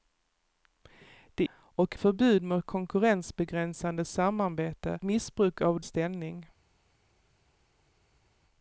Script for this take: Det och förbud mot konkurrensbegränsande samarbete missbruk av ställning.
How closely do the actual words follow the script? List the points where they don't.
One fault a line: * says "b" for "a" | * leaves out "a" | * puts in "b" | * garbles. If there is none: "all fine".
all fine